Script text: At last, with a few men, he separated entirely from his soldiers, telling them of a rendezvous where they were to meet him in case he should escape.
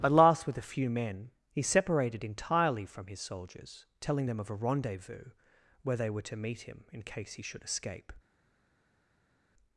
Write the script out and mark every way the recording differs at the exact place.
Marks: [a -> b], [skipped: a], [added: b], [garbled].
At last, with a few men, he separated entirely from his soldiers, telling them of a rendezvous where they were to meet him in case he should escape.